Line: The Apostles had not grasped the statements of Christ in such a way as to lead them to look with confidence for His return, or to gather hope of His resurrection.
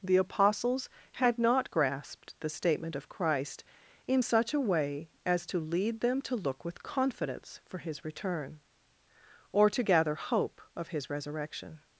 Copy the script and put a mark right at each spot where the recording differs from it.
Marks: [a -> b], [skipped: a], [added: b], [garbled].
The Apostles had not grasped the [statements -> statement] of Christ in such a way as to lead them to look with confidence for His return, or to gather hope of His resurrection.